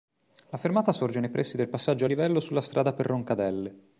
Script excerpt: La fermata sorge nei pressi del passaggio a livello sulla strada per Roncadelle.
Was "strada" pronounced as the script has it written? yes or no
yes